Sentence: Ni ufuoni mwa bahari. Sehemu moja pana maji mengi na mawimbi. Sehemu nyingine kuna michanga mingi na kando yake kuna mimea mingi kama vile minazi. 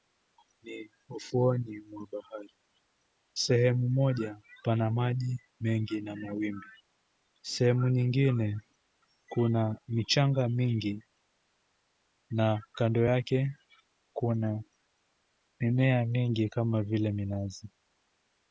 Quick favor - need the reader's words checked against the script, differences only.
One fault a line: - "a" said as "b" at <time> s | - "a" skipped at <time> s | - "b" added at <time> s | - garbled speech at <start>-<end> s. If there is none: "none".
none